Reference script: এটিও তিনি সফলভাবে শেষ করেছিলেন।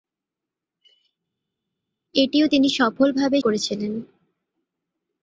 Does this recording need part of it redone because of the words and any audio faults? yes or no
yes